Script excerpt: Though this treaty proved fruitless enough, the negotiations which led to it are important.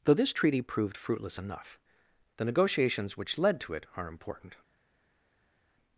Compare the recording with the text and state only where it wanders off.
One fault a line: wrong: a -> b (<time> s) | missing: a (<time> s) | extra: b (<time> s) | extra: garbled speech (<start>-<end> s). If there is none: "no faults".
no faults